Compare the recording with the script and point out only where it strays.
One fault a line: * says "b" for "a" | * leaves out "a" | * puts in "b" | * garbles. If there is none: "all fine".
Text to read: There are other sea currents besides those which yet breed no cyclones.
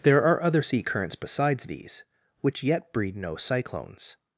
* says "these" for "those"